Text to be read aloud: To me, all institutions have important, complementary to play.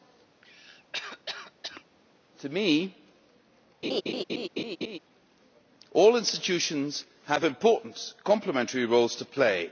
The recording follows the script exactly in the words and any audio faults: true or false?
false